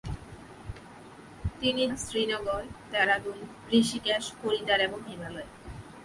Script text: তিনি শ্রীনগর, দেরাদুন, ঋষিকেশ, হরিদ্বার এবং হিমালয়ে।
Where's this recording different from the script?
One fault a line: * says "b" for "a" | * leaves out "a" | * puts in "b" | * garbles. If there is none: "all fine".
all fine